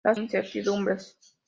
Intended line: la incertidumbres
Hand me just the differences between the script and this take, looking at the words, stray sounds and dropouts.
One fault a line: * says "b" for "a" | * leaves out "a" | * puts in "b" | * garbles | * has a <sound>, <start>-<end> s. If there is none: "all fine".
all fine